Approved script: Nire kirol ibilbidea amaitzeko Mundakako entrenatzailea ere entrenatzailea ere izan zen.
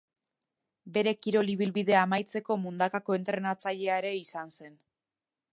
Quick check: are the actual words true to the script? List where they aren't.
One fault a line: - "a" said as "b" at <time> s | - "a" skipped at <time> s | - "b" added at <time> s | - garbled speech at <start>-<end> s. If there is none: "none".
- "Nire" said as "Bere" at 0.9 s
- "entrenatzailea ere" skipped at 4.2 s